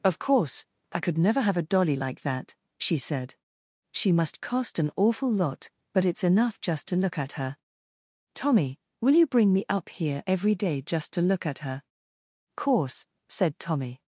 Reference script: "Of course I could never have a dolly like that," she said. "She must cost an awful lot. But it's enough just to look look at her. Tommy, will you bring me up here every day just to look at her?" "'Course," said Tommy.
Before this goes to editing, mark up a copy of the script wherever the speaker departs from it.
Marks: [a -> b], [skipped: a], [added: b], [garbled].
"Of course I could never have a dolly like that," she said. "She must cost an awful lot. But it's enough just to look [skipped: look] at her. Tommy, will you bring me up here every day just to look at her?" "'Course," said Tommy.